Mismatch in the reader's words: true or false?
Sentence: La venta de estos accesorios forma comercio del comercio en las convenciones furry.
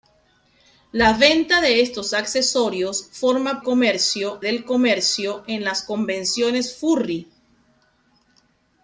false